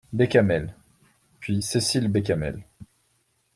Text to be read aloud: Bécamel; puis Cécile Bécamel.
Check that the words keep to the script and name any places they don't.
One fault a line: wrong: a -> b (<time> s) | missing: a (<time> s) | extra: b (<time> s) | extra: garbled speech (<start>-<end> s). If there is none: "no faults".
no faults